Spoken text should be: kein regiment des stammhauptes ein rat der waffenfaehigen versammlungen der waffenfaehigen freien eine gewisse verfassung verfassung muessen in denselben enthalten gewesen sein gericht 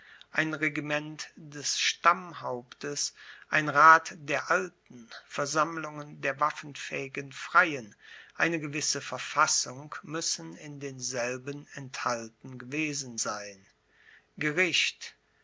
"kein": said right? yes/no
no